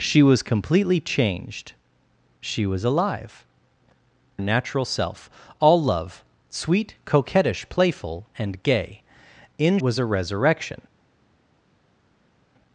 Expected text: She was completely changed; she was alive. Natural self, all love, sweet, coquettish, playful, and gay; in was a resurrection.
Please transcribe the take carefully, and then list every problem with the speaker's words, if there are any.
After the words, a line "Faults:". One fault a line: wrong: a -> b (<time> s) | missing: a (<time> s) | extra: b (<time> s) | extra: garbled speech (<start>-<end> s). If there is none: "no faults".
She was completely changed; she was alive. Natural self, all love, sweet, coquettish, playful, and gay; in was a resurrection.
Faults:
no faults